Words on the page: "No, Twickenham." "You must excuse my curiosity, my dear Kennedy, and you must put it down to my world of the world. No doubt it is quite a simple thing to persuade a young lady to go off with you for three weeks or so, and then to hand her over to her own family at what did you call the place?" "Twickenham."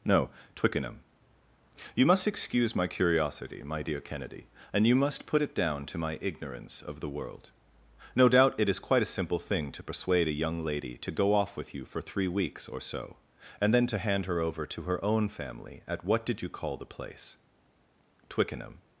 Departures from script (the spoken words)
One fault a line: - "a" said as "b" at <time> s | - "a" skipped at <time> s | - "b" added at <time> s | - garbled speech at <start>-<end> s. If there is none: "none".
- "world" said as "ignorance" at 6.2 s